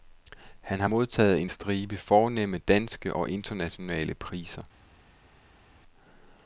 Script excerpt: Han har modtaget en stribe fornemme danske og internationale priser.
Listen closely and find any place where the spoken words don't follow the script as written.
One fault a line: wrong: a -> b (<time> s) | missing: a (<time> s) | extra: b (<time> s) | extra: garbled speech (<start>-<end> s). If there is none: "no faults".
no faults